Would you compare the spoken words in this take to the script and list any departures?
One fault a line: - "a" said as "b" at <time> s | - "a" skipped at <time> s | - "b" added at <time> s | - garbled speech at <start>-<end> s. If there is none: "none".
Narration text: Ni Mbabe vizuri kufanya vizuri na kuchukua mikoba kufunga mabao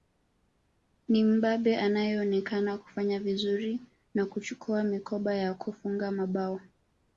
- "vizuri" said as "anayeonekana" at 1.8 s
- "ya" added at 5.3 s